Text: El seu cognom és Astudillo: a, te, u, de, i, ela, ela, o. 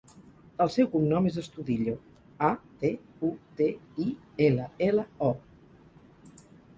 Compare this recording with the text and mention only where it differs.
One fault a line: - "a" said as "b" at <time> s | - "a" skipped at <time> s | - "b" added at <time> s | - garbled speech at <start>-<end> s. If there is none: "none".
none